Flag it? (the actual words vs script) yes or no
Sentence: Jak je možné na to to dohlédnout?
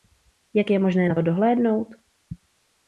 yes